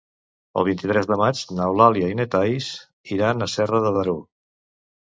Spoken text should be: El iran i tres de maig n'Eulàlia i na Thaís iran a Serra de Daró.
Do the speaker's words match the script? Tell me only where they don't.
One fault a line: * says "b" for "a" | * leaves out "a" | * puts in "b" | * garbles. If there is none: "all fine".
* says "vint" for "iran"